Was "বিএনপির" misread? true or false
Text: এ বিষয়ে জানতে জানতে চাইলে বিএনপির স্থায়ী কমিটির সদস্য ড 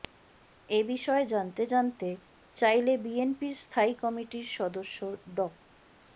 false